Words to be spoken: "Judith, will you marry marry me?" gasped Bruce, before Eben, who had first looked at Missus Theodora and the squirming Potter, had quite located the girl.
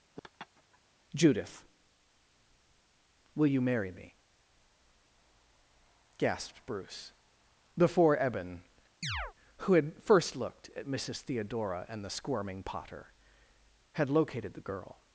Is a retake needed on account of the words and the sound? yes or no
yes